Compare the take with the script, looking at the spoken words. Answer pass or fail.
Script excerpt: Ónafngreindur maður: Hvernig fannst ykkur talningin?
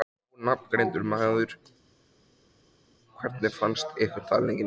pass